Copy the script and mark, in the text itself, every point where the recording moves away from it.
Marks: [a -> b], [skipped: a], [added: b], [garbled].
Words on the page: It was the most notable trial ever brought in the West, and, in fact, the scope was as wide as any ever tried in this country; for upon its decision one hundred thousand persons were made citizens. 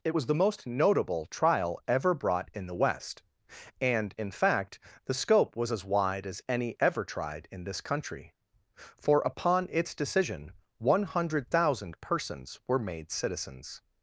It was the most notable trial ever brought in the West, and, in fact, the scope was as wide as any ever tried in this country; for upon its decision one hundred thousand persons were made citizens.